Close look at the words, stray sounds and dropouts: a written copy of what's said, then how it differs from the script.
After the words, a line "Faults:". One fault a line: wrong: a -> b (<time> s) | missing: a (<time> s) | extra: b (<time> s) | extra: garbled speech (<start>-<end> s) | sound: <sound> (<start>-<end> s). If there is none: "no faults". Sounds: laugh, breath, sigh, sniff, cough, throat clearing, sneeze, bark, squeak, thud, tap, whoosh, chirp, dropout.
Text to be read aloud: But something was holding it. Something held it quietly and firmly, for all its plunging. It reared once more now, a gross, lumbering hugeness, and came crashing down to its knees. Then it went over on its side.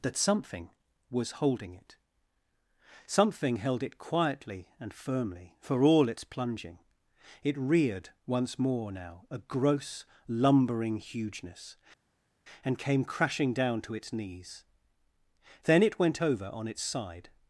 That something was holding it. Something held it quietly and firmly, for all its plunging. It reared once more now, a gross, lumbering hugeness, and came crashing down to its knees. Then it went over on its side.
Faults:
wrong: But -> That (0.0 s)